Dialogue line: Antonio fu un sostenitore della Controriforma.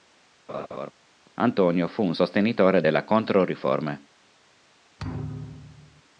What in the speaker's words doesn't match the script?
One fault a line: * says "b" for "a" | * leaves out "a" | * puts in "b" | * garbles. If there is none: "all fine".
all fine